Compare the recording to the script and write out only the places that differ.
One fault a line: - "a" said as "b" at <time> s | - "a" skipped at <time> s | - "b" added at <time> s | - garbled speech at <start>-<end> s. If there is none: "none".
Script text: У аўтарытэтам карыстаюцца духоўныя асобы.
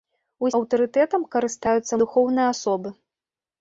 none